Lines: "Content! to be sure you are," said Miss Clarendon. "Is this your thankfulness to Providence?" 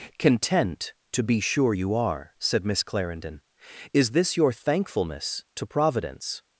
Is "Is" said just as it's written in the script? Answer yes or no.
yes